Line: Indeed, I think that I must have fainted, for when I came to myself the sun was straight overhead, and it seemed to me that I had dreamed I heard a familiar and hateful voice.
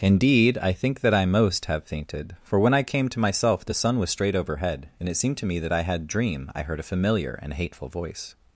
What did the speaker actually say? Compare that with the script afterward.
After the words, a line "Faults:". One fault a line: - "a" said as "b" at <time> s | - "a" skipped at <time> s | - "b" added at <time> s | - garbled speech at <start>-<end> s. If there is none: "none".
Indeed, I think that I most have fainted, for when I came to myself the sun was straight overhead, and it seemed to me that I had dream I heard a familiar and hateful voice.
Faults:
- "must" said as "most" at 1.2 s
- "dreamed" said as "dream" at 6.1 s